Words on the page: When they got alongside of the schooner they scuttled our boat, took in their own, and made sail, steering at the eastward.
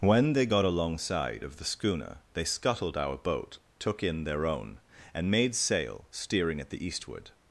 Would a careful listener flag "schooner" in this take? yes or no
no